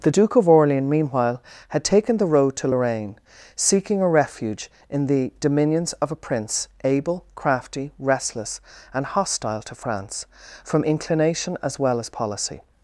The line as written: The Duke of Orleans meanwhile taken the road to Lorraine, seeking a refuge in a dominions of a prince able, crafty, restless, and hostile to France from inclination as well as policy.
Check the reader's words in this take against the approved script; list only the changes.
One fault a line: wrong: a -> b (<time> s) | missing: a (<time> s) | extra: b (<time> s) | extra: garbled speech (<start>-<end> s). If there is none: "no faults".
extra: had (1.7 s)
wrong: a -> the (5.1 s)